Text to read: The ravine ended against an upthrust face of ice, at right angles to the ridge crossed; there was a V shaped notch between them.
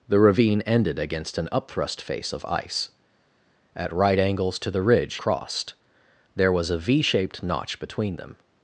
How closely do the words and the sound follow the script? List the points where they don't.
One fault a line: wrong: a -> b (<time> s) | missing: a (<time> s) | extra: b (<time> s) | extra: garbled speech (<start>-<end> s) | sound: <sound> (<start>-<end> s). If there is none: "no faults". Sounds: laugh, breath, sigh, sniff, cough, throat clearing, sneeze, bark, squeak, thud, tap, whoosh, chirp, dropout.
no faults